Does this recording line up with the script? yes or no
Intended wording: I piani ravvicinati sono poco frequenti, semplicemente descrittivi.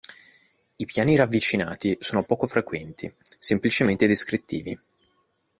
yes